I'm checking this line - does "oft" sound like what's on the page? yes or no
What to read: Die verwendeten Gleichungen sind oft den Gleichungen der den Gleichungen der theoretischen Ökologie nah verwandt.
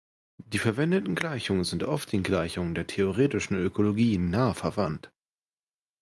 yes